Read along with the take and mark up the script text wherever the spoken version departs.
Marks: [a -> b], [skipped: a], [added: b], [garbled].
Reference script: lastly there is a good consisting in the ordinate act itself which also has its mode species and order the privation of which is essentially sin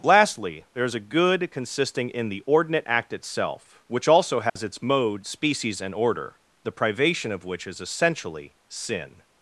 lastly there is a good consisting in the ordinate act itself which also has its mode species and order the privation of which is essentially sin